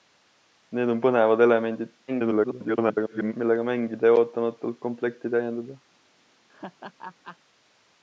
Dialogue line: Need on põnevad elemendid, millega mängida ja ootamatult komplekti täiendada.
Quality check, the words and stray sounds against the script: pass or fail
fail